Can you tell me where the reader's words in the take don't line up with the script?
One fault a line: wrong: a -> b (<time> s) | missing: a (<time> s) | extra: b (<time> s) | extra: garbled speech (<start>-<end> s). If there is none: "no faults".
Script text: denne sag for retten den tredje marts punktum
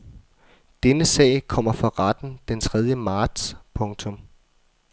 extra: kommer (1.5 s)